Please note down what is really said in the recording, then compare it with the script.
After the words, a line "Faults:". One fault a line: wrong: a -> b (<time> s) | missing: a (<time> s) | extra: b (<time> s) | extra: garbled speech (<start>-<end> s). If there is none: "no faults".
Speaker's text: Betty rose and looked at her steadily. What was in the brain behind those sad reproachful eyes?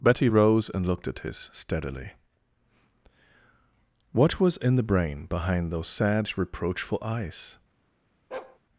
Betty rose and looked at his steadily. What was in the brain behind those sad reproachful eyes?
Faults:
wrong: her -> his (1.2 s)